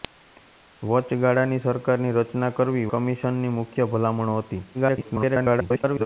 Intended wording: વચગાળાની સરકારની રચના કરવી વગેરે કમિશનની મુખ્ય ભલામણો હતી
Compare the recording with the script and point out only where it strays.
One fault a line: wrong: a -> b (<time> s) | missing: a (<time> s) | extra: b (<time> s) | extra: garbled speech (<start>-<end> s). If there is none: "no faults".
missing: વગેરે (2.9 s)
extra: garbled speech (4.7-6.1 s)